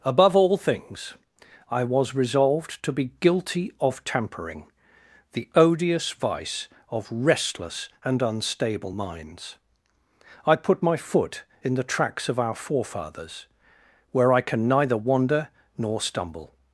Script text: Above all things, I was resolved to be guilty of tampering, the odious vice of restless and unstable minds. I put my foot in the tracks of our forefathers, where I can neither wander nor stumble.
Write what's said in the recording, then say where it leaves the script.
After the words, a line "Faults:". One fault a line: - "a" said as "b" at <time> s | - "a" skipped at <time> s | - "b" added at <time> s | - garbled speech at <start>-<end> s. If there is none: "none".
Above all things, I was resolved to be guilty of tampering, the odious vice of restless and unstable minds. I put my foot in the tracks of our forefathers, where I can neither wander nor stumble.
Faults:
none